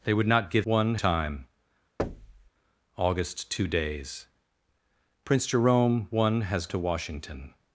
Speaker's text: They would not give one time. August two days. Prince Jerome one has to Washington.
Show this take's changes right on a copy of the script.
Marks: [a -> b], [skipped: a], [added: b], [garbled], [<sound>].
They would not give one time. [thud] August two days. Prince Jerome one has to Washington.